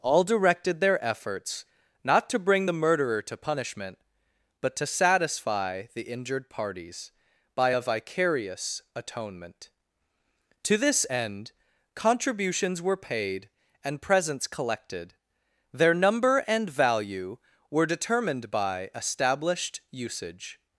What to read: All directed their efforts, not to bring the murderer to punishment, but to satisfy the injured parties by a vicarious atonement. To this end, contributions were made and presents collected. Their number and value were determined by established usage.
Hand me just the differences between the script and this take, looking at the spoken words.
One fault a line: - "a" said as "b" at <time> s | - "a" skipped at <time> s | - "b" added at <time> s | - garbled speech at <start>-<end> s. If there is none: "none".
- "made" said as "paid" at 13.0 s